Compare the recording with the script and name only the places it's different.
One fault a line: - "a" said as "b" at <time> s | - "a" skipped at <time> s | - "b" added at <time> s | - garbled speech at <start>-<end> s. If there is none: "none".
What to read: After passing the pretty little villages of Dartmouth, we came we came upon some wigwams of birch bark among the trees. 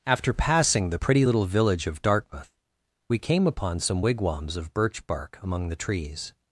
- "villages" said as "village" at 1.5 s
- "we came" skipped at 3.5 s